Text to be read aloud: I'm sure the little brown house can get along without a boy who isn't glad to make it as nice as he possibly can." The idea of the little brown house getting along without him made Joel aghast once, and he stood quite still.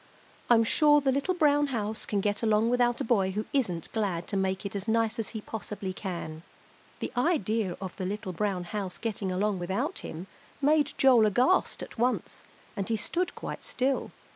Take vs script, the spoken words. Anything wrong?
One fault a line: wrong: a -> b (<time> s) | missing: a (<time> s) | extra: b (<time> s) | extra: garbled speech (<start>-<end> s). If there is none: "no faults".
extra: at (11.8 s)